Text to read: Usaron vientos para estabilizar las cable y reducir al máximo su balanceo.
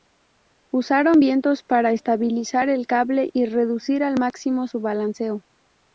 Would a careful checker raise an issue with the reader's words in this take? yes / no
yes